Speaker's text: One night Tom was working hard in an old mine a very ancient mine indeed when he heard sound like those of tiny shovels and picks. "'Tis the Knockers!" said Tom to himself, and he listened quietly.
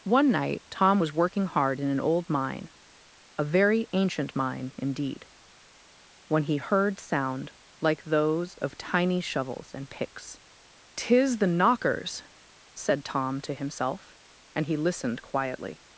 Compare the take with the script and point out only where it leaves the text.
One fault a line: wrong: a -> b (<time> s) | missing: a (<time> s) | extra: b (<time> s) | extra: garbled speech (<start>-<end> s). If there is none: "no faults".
no faults